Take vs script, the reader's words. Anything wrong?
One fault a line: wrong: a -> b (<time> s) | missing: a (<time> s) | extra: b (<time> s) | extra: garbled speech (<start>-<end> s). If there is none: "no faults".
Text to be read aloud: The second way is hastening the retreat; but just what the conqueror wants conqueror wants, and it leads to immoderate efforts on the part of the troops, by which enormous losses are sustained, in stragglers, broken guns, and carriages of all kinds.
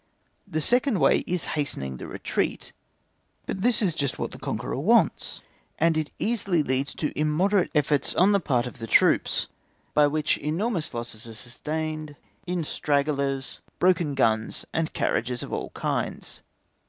extra: this is (3.6 s)
missing: conqueror wants (5.4 s)
extra: easily (6.2 s)